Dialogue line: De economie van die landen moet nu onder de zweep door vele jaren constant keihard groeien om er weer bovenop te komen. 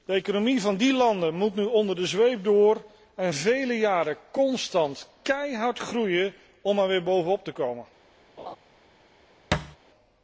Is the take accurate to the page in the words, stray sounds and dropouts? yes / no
no